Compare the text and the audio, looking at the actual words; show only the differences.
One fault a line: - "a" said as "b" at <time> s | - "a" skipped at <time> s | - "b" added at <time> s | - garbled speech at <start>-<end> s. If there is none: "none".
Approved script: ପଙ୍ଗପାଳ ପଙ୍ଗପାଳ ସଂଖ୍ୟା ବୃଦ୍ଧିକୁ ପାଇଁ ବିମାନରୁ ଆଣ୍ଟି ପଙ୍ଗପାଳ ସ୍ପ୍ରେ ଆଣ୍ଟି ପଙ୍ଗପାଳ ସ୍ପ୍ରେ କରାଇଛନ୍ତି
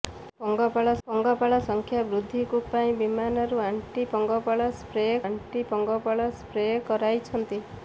none